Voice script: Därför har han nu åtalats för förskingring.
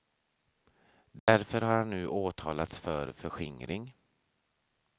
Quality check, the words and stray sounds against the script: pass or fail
fail